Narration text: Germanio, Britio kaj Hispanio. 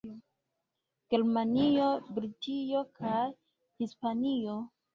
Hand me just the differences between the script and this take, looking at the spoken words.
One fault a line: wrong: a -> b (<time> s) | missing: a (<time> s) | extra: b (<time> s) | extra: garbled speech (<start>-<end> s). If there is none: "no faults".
no faults